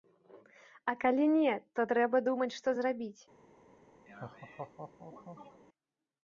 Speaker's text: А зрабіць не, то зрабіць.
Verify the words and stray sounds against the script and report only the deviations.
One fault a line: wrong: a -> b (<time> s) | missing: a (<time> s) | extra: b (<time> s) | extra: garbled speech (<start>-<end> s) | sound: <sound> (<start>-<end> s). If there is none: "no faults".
wrong: зрабіць -> калі (1.0 s)
extra: трэба думаць што (1.9 s)
sound: laugh (4.1-5.6 s)